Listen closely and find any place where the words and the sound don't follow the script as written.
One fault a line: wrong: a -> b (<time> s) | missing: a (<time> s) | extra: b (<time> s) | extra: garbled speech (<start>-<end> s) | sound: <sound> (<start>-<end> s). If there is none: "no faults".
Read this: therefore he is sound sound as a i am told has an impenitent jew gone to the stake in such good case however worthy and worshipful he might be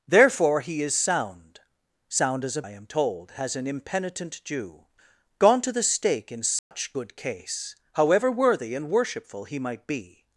sound: dropout (6.6-6.7 s)